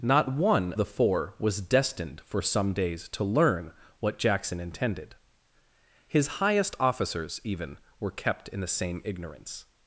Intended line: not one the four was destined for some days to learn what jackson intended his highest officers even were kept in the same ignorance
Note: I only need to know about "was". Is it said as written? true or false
true